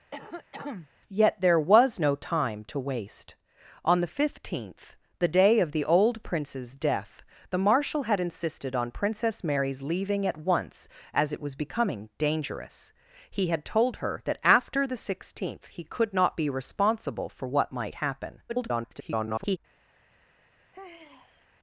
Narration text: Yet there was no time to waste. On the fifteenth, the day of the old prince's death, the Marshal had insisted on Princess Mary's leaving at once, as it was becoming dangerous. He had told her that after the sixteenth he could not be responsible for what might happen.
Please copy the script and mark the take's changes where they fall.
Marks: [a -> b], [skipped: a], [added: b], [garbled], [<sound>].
[cough] Yet there was no time to waste. On the fifteenth, the day of the old prince's death, the Marshal had insisted on Princess Mary's leaving at once, as it was becoming dangerous. He had told her that after the sixteenth he could not be responsible for what might happen. [garbled] [sigh]